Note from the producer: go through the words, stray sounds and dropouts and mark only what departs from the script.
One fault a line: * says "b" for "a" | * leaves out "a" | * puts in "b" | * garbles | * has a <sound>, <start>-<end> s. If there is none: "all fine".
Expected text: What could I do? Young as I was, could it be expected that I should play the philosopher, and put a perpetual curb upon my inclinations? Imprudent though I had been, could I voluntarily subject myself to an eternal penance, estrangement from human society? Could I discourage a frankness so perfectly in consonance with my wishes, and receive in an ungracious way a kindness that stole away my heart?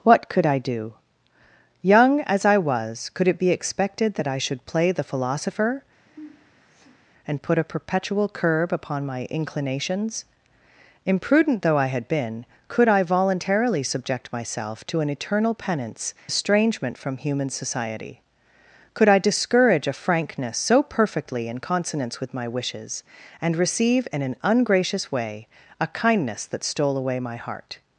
* has a sniff, 6.1-7.1 s